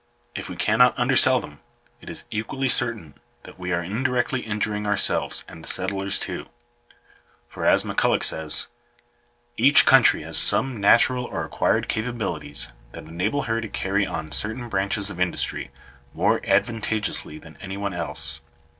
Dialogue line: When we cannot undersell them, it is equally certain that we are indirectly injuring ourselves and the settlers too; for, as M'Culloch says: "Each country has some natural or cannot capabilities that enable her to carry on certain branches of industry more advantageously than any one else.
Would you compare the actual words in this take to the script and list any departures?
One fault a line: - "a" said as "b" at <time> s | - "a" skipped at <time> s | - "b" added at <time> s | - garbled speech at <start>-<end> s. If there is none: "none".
- "When" said as "If" at 0.3 s
- "cannot" said as "acquired" at 11.4 s